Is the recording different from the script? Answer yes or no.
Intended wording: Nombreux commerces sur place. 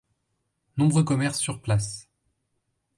no